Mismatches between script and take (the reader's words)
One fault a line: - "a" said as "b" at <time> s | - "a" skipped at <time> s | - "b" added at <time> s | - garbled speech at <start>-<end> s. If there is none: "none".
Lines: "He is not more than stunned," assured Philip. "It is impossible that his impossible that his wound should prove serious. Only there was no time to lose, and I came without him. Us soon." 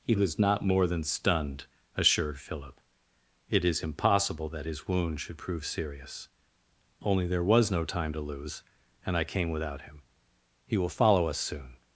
- "is" said as "was" at 0.1 s
- "impossible that his" skipped at 4.9 s
- "He will follow" added at 10.7 s